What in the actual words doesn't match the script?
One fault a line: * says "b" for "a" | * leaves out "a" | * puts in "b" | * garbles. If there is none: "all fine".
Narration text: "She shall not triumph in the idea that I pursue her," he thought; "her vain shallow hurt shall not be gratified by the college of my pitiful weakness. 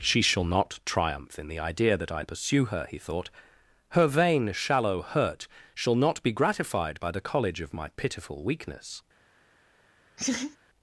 all fine